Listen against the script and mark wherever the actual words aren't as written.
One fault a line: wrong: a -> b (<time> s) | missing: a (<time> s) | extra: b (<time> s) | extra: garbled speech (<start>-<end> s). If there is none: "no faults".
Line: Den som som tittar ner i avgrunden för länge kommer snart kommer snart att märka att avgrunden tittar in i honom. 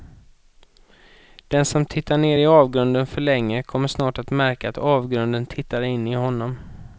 missing: som (1.9 s)
missing: kommer snart (4.2 s)